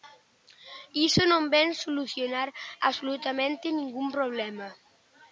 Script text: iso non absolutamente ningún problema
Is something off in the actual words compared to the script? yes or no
yes